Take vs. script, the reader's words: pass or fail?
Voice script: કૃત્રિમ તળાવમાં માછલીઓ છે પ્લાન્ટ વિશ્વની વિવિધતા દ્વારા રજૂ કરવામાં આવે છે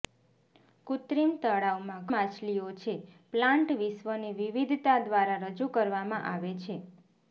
pass